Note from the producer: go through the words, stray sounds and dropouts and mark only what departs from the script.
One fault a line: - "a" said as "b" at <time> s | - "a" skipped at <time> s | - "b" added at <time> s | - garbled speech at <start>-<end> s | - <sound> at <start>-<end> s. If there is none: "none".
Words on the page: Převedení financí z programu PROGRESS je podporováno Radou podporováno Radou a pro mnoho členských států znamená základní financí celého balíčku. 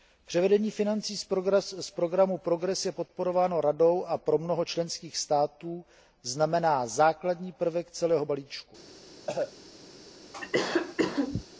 - "podporováno Radou" skipped at 4.0 s
- "financí" said as "prvek" at 7.5 s
- cough at 9.3-9.5 s
- cough at 10.3-11.4 s